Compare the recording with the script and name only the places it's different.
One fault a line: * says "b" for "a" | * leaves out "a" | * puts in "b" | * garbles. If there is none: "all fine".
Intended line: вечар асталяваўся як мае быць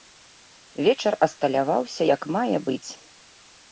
all fine